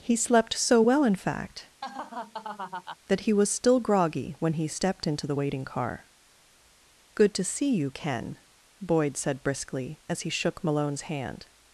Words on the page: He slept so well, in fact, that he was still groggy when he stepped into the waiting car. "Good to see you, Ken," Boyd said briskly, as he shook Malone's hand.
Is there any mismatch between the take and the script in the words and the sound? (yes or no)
yes